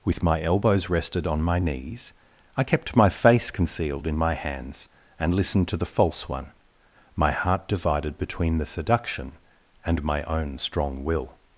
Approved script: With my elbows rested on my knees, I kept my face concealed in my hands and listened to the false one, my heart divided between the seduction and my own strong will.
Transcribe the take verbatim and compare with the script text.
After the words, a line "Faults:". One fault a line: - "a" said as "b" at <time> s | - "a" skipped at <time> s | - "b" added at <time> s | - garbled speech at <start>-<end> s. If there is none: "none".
With my elbows rested on my knees, I kept my face concealed in my hands and listened to the false one, my heart divided between the seduction and my own strong will.
Faults:
none